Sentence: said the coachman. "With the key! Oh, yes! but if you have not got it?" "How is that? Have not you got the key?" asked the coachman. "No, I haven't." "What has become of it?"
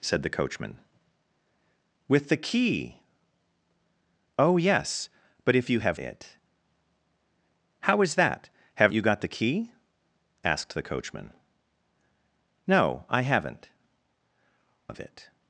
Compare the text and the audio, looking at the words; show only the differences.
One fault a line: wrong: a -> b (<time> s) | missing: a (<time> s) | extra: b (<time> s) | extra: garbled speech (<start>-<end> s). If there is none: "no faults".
missing: not got (6.0 s)
missing: not (8.9 s)
missing: What has become (13.7 s)